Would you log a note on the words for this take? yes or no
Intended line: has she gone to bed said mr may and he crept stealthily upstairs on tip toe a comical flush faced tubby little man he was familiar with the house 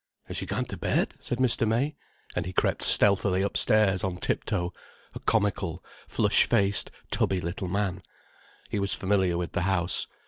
no